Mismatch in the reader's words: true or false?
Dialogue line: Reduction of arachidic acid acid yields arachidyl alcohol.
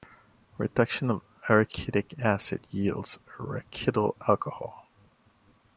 true